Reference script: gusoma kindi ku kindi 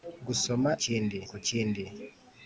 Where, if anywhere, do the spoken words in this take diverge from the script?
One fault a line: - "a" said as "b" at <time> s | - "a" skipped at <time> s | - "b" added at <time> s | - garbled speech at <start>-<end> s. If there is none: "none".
none